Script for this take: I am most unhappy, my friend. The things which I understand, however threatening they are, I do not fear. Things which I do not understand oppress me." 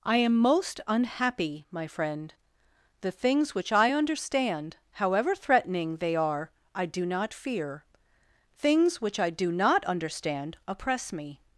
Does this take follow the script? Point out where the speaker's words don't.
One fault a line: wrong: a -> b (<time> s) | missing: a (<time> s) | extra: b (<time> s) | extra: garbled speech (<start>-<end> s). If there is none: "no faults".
no faults